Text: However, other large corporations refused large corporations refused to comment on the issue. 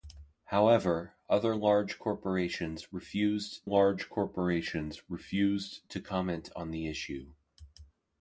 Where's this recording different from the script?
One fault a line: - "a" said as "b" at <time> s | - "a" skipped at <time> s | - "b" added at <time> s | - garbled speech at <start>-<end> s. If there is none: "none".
none